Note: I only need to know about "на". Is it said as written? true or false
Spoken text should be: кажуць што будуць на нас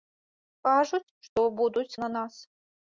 true